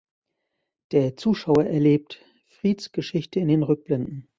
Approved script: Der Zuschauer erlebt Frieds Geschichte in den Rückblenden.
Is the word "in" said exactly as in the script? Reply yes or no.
yes